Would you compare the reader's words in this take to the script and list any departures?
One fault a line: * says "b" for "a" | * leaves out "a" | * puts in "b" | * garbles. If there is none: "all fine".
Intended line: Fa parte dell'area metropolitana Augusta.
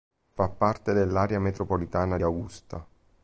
all fine